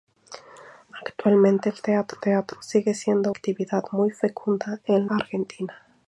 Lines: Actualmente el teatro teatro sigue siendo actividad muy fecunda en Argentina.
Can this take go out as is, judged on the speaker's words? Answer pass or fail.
pass